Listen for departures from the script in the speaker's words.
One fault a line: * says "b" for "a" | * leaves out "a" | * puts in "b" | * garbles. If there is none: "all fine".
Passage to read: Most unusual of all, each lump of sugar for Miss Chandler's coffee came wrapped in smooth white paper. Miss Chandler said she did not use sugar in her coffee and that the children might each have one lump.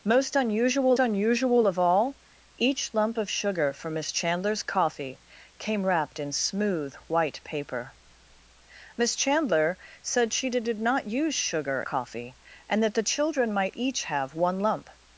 * puts in "unusual"
* puts in "did"
* leaves out "in her"